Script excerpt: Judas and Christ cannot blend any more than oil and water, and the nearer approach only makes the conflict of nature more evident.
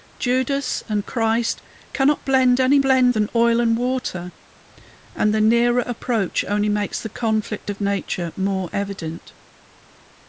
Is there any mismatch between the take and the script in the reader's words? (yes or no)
yes